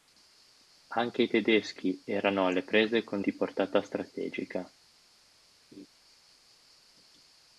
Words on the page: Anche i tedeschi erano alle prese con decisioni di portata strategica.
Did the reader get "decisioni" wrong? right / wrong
wrong